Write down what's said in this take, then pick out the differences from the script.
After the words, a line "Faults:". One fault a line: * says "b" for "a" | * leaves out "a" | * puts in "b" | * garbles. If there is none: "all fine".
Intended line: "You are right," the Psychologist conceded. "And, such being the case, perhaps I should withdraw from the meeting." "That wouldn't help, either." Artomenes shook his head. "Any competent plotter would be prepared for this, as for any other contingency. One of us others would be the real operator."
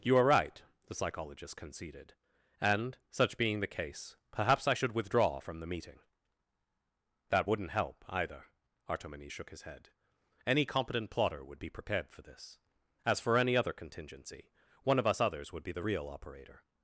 "You are right," the Psychologist conceded. "And, such being the case, perhaps I should withdraw from the meeting." "That wouldn't help, either." Artomenes shook his head. "Any competent plotter would be prepared for this, as for any other contingency. One of us others would be the real operator."
Faults:
all fine